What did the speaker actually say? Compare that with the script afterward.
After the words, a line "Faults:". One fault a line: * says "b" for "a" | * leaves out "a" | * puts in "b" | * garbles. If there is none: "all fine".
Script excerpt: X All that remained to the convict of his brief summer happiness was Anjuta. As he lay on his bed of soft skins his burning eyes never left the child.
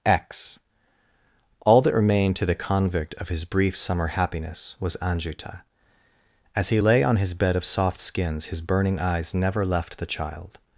X All that remained to the convict of his brief summer happiness was Anjuta. As he lay on his bed of soft skins his burning eyes never left the child.
Faults:
all fine